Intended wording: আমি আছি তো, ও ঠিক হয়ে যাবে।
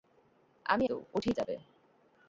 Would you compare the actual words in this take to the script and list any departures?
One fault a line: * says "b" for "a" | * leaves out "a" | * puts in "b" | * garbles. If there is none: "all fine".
* leaves out "আছি"
* leaves out "হয়ে"